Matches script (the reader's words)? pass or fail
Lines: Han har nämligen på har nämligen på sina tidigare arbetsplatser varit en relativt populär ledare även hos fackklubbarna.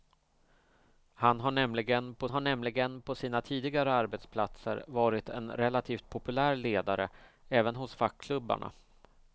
pass